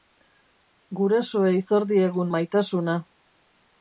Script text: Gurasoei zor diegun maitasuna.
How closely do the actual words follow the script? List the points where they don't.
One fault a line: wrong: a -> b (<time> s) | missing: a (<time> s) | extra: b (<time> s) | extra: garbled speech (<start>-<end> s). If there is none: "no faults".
no faults